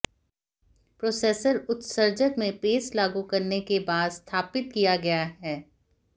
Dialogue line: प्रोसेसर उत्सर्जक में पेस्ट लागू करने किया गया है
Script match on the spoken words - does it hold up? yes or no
no